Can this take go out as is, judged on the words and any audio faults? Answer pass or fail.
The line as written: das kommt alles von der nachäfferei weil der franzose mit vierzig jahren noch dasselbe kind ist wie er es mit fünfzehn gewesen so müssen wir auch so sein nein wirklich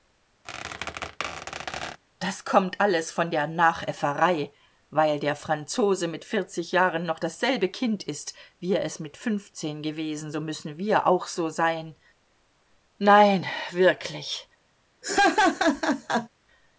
fail